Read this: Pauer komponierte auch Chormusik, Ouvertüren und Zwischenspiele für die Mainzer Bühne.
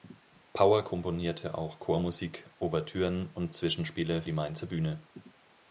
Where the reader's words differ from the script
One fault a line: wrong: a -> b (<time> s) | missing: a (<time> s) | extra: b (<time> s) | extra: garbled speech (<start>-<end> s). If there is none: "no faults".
missing: für (4.2 s)